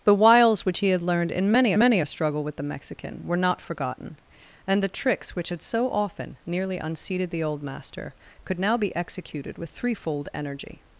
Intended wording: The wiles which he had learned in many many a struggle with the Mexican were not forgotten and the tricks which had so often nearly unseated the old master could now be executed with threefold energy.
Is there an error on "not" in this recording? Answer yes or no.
no